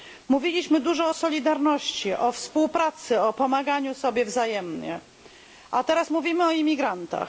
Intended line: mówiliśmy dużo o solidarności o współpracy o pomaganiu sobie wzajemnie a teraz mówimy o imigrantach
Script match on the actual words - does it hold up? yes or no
yes